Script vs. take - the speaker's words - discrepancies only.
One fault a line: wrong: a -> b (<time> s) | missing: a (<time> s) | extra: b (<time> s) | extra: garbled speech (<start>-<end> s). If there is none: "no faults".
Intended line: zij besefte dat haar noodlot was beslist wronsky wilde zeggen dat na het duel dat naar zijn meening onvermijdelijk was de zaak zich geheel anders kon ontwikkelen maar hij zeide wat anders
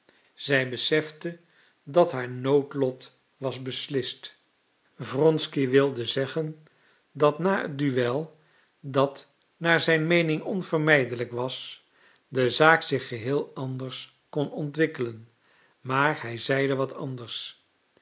no faults